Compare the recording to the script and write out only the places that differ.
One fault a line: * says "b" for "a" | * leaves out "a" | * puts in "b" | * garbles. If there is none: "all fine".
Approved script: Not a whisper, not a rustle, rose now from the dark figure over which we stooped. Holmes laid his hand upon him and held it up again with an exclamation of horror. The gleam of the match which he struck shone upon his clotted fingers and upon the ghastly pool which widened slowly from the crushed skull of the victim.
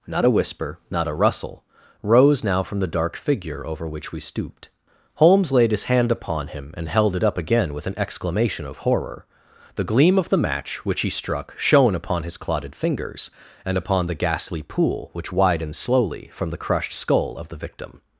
all fine